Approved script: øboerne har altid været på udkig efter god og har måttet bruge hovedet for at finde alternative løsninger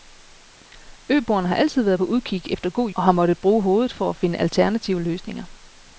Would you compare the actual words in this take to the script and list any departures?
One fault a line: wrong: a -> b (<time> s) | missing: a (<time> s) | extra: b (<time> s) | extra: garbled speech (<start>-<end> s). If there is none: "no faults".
no faults